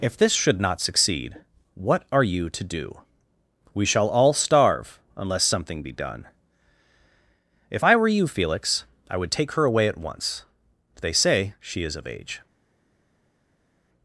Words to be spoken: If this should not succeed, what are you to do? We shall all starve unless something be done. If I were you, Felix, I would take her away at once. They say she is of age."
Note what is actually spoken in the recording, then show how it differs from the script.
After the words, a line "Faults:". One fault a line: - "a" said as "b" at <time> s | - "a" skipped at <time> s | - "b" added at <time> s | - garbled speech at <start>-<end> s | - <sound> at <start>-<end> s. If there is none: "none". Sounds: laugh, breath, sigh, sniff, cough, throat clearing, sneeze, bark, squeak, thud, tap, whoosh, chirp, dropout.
If this should not succeed, what are you to do? We shall all starve unless something be done. If I were you, Felix, I would take her away at once. They say she is of age."
Faults:
none